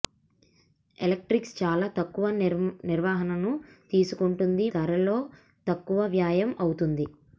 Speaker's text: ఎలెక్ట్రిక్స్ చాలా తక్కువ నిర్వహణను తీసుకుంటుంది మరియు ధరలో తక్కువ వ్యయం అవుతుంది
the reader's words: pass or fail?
fail